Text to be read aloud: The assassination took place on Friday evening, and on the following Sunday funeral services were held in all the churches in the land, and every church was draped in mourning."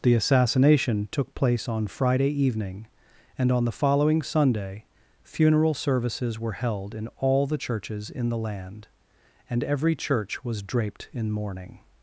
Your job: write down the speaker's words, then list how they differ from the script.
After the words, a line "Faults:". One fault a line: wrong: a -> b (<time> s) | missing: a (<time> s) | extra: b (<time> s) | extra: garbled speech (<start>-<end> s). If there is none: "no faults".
The assassination took place on Friday evening, and on the following Sunday funeral services were held in all the churches in the land, and every church was draped in mourning."
Faults:
no faults